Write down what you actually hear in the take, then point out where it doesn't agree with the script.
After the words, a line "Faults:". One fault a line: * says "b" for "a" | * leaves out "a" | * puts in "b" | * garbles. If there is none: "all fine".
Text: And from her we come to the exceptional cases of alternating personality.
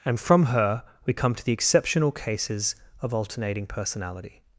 And from her we come to the exceptional cases of alternating personality.
Faults:
all fine